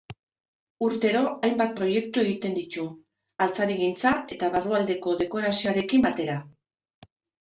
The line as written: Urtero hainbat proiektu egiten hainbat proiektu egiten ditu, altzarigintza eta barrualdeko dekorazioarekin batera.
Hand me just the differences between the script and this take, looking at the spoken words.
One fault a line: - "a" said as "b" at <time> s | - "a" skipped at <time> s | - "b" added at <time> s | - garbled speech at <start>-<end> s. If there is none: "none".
- "hainbat proiektu egiten" skipped at 2.5 s